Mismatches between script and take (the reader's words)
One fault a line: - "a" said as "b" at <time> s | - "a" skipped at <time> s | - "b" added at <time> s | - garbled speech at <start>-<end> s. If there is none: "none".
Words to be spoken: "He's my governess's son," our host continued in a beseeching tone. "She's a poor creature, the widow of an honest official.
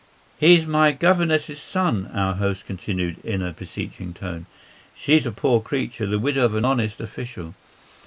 none